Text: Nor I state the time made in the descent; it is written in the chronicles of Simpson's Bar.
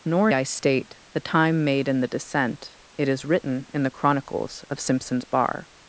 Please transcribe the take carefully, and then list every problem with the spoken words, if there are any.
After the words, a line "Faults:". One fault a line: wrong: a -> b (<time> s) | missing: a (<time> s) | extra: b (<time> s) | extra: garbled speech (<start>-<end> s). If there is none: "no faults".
Nor I state the time made in the descent; it is written in the chronicles of Simpson's Bar.
Faults:
no faults